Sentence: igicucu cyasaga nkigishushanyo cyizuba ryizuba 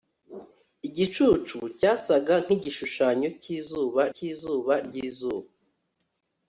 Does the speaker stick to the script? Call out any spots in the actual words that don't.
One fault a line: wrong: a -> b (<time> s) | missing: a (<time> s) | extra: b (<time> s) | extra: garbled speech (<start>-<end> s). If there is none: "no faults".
extra: cyizuba (4.1 s)